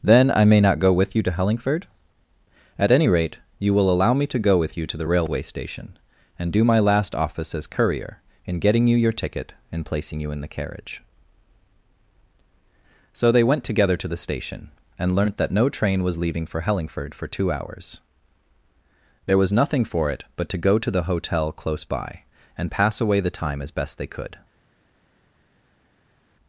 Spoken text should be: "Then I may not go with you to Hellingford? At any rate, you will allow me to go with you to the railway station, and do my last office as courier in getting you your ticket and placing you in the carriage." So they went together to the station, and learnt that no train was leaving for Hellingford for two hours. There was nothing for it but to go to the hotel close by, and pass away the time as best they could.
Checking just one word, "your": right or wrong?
right